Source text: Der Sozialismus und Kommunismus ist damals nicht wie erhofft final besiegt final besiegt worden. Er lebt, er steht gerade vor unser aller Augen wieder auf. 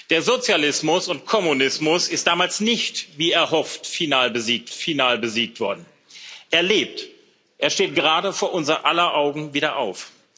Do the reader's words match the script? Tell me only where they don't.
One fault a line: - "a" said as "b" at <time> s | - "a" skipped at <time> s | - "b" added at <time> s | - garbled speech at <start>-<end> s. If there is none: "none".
none